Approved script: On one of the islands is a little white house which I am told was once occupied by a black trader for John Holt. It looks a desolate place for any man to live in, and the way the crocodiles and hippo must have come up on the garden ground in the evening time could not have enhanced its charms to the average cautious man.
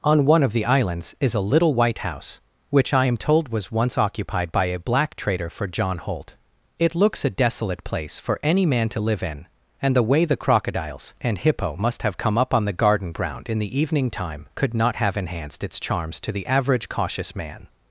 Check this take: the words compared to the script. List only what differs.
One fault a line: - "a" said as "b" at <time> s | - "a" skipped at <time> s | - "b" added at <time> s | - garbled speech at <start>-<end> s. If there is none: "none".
none